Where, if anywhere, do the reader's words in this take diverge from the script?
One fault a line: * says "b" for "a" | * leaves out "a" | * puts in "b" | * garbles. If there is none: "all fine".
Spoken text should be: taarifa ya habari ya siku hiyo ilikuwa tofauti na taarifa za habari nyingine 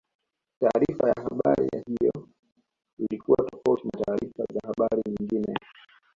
* leaves out "siku"